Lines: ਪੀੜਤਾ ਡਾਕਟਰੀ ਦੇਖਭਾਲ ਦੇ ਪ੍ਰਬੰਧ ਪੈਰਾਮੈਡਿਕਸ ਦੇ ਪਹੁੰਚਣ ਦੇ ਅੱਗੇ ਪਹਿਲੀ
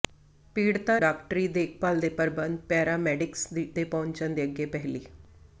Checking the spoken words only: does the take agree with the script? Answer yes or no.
yes